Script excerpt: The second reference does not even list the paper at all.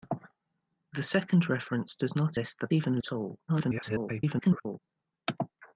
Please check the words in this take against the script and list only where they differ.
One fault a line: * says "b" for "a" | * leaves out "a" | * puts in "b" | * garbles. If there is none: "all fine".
* leaves out "even"
* says "even" for "paper"
* garbles